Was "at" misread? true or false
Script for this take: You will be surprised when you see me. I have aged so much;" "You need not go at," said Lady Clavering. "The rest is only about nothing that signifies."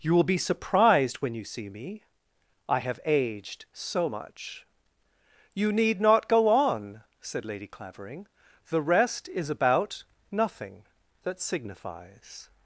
true